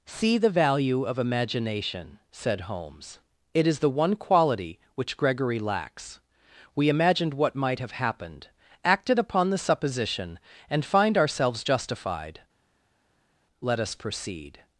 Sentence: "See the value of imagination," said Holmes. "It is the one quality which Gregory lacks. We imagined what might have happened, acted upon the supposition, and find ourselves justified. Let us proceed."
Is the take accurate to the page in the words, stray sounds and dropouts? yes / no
yes